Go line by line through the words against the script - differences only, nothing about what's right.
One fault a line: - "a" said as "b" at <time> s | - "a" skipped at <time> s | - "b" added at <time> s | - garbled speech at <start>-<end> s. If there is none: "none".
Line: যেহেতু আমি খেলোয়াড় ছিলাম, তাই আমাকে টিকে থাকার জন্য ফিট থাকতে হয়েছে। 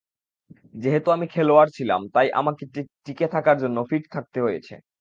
none